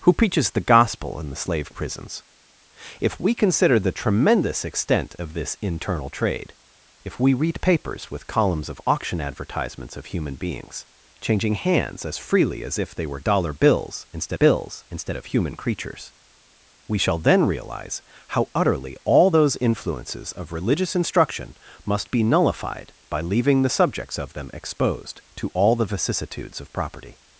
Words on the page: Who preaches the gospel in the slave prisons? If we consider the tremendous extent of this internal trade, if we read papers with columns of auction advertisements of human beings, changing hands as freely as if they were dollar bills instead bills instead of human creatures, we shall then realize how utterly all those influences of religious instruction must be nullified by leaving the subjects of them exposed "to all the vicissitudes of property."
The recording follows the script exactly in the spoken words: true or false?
true